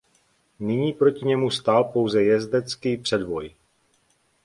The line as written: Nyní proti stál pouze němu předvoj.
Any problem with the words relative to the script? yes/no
yes